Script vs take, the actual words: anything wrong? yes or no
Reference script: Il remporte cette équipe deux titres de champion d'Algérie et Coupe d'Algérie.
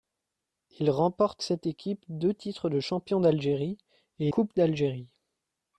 no